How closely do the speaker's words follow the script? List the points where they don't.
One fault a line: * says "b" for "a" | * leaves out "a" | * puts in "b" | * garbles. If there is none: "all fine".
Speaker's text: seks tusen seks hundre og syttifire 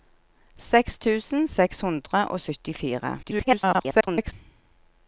* garbles